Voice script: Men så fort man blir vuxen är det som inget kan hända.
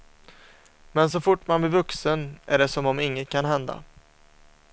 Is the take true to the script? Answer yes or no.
no